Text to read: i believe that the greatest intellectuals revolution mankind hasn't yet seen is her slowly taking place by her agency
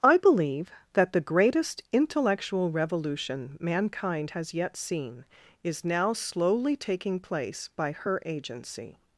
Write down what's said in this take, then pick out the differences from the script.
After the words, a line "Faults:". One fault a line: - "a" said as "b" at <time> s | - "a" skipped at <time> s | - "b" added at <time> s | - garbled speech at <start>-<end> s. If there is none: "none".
i believe that the greatest intellectual revolution mankind has yet seen is now slowly taking place by her agency
Faults:
- "intellectuals" said as "intellectual" at 1.9 s
- "hasn't" said as "has" at 4.3 s
- "her" said as "now" at 5.8 s